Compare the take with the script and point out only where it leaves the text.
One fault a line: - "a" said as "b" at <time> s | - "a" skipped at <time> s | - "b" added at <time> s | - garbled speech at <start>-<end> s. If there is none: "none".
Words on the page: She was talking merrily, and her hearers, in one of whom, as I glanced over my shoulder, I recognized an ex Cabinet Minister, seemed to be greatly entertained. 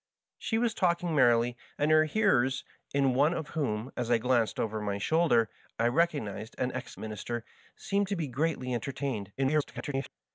- "Cabinet" skipped at 7.0 s
- garbled speech at 9.4-10.1 s